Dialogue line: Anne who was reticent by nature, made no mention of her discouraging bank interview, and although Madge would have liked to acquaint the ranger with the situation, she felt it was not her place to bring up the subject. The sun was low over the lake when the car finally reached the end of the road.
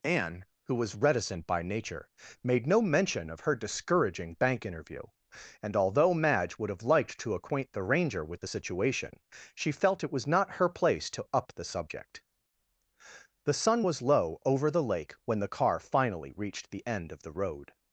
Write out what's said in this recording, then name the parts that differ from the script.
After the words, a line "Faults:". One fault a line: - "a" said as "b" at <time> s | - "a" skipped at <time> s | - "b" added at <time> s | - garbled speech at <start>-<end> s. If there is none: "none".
Anne who was reticent by nature, made no mention of her discouraging bank interview, and although Madge would have liked to acquaint the ranger with the situation, she felt it was not her place to up the subject. The sun was low over the lake when the car finally reached the end of the road.
Faults:
- "bring" skipped at 11.2 s